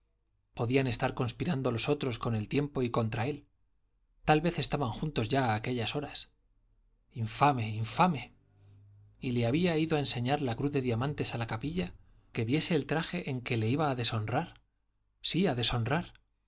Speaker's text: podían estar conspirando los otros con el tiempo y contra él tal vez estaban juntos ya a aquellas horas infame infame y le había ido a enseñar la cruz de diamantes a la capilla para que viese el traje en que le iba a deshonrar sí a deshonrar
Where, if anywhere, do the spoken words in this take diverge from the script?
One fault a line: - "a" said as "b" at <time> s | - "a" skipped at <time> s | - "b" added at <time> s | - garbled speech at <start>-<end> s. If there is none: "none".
- "para" skipped at 11.9 s